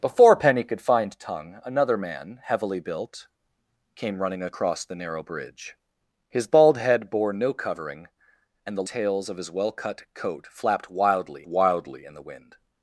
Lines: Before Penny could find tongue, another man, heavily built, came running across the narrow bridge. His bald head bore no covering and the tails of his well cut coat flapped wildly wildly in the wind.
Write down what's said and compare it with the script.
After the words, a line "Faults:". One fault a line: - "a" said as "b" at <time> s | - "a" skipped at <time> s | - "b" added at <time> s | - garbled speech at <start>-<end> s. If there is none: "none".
Before Penny could find tongue, another man, heavily built, came running across the narrow bridge. His bald head bore no covering and the tails of his well cut coat flapped wildly wildly in the wind.
Faults:
none